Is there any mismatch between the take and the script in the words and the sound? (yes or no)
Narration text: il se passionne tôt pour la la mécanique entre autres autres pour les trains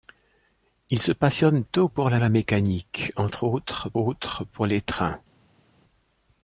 no